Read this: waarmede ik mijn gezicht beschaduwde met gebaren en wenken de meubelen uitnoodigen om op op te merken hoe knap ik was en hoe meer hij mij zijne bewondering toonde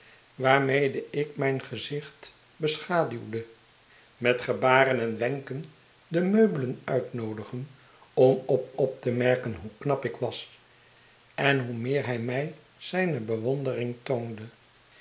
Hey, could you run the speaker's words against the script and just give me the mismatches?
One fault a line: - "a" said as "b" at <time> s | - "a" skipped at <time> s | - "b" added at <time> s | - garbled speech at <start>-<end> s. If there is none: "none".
none